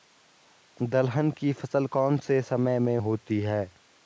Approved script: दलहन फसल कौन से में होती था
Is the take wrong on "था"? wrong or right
wrong